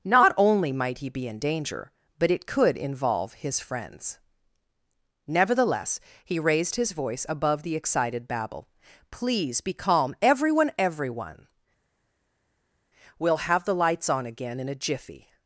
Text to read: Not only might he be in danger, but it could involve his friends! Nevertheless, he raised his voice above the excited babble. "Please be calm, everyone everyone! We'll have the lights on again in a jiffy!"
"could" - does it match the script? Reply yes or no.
yes